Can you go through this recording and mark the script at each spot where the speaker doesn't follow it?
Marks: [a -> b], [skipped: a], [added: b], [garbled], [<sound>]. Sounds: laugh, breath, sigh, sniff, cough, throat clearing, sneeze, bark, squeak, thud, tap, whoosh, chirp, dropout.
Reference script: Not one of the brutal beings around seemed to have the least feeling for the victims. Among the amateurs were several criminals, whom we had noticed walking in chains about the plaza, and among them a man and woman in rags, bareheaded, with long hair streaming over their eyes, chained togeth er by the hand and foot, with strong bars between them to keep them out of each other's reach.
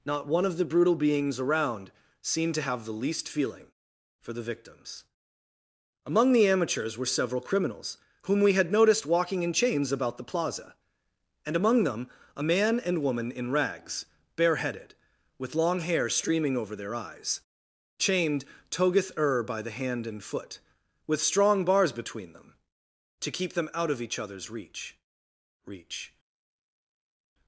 Not one of the brutal beings around seemed to have the least feeling for the victims. Among the amateurs were several criminals, whom we had noticed walking in chains about the plaza, and among them a man and woman in rags, bareheaded, with long hair streaming over their eyes, chained togeth er by the hand and foot, with strong bars between them to keep them out of each other's reach. [added: reach]